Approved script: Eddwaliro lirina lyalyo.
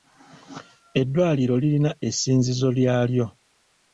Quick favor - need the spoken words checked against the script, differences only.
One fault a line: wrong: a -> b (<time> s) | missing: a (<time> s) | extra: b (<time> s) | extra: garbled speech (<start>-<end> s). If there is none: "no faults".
extra: essinzizo (2.1 s)